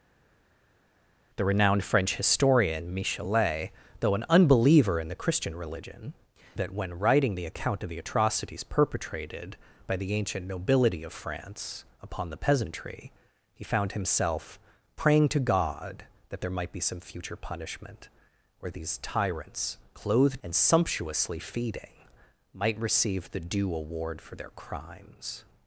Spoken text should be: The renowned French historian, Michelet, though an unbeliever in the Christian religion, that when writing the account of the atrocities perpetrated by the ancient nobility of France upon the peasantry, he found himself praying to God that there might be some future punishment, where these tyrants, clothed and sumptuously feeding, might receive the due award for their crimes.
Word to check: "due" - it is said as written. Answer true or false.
true